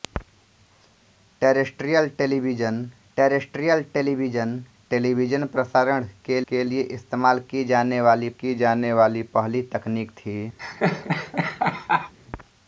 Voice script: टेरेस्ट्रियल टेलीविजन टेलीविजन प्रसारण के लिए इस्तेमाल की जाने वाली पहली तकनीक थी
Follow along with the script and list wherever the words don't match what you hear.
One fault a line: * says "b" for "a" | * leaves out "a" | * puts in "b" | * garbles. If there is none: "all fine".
* puts in "टेरेस्ट्रियल"
* puts in "टेलीविजन"
* puts in "के"
* puts in "की जाने वाली"